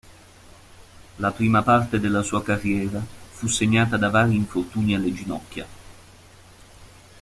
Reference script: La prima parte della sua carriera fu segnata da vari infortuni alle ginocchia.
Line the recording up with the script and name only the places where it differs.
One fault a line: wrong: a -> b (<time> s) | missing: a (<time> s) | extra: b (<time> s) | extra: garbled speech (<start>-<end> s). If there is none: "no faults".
no faults